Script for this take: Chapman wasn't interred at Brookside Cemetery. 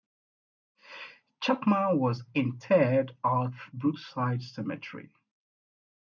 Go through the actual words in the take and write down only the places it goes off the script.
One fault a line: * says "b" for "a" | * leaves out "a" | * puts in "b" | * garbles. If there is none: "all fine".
* says "was" for "wasn't"